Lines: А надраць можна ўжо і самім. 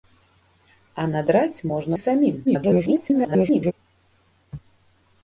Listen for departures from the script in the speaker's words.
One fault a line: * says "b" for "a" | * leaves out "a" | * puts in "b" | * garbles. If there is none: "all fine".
* leaves out "ўжо"
* garbles